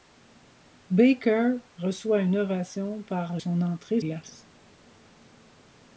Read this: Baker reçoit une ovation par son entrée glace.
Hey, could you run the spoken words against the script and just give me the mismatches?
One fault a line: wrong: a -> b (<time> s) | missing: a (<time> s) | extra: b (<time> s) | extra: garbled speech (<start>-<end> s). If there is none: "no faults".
no faults